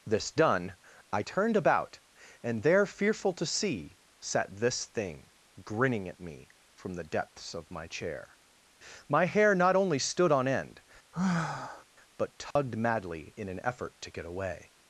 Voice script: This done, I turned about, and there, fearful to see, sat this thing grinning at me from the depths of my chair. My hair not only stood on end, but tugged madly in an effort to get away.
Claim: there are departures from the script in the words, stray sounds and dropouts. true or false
true